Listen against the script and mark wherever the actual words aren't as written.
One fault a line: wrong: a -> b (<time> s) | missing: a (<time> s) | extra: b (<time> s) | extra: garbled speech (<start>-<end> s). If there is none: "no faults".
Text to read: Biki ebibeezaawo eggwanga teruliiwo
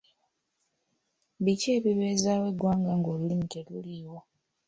extra: ng'olulimi (3.0 s)